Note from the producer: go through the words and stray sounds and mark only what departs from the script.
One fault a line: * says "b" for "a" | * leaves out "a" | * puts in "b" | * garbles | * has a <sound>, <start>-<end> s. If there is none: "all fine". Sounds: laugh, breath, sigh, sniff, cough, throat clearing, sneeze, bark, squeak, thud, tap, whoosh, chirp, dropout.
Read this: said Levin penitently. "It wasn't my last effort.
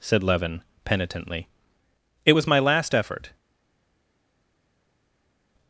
* says "was" for "wasn't"